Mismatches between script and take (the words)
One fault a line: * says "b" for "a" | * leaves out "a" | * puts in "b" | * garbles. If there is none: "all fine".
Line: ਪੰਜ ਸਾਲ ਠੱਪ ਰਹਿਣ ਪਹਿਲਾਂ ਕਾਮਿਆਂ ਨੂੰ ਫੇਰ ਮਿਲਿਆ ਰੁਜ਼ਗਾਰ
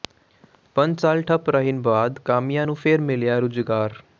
* says "ਬਾਅਦ" for "ਪਹਿਲਾਂ"